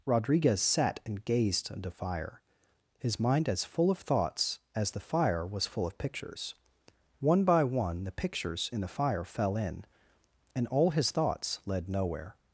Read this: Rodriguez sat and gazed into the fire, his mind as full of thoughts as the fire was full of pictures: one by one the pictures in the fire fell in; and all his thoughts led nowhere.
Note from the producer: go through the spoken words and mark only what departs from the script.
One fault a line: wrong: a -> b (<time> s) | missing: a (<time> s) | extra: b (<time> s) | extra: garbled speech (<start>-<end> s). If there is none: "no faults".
missing: the (1.9 s)